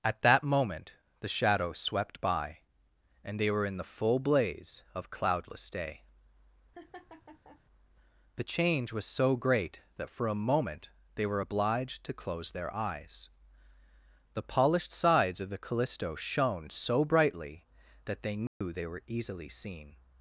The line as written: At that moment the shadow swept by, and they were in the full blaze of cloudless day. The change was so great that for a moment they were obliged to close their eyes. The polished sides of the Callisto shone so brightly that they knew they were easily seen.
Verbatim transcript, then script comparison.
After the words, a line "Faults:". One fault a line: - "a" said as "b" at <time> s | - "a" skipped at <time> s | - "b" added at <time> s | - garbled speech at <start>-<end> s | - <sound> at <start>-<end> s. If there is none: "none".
At that moment the shadow swept by, and they were in the full blaze of cloudless day. The change was so great that for a moment they were obliged to close their eyes. The polished sides of the Callisto shone so brightly that they knew they were easily seen.
Faults:
- laugh at 6.7-7.6 s
- dropout at 18.5-18.6 s